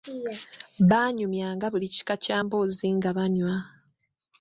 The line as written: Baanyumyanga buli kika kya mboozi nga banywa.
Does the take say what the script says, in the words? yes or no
yes